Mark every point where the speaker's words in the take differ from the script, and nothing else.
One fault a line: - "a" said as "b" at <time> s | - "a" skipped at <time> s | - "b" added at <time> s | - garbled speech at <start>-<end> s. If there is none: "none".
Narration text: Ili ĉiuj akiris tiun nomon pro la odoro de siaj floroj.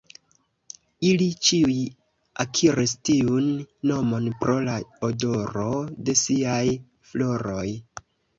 none